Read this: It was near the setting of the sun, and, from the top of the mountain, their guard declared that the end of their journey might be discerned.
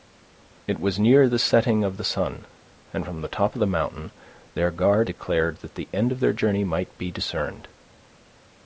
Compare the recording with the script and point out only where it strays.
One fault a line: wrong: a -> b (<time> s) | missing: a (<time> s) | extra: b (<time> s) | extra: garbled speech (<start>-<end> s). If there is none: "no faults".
no faults